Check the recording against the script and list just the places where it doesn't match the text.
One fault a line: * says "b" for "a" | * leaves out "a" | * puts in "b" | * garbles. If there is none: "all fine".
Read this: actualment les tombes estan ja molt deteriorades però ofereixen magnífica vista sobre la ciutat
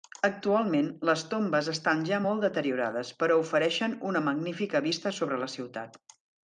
* puts in "una"